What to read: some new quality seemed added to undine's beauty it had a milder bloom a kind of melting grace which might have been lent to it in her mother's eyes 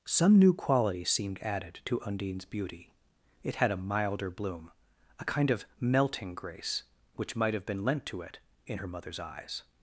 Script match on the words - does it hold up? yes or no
yes